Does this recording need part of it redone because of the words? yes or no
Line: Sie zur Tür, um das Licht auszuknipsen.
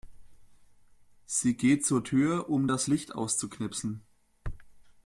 yes